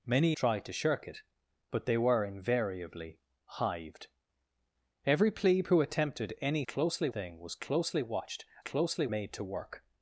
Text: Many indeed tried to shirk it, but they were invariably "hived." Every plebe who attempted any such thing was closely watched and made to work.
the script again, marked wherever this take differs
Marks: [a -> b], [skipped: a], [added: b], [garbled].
Many [skipped: indeed] tried to shirk it, but they were invariably "hived." Every plebe who attempted any [such -> closely] thing was closely watched [and -> closely] made to work.